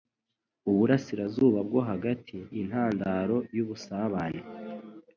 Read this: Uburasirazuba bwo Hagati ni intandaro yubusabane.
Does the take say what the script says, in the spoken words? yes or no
no